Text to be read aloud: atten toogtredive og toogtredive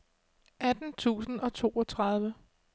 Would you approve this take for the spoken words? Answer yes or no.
no